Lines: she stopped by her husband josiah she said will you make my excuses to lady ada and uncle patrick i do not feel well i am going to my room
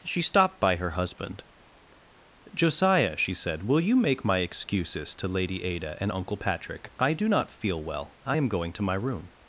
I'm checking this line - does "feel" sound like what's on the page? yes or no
yes